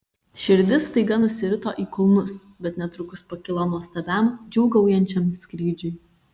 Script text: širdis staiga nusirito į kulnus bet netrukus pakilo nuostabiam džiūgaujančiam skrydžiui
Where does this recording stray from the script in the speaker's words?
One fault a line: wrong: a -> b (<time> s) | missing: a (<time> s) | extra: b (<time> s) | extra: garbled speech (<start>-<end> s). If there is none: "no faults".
no faults